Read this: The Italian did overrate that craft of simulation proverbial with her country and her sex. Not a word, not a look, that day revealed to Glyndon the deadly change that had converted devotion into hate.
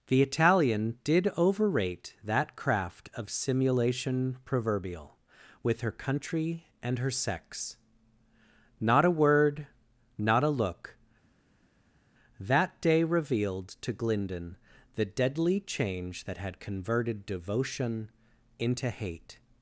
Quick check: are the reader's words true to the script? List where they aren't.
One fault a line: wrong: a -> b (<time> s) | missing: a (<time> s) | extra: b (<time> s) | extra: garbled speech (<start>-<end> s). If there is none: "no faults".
no faults